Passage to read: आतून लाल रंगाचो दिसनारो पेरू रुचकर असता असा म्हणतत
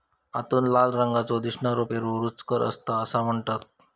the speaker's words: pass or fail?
pass